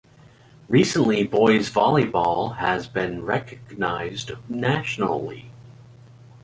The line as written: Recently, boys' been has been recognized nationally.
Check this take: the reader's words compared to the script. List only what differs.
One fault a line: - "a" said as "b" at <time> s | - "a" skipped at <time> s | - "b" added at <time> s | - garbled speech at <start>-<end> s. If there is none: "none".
- "been" said as "volleyball" at 1.7 s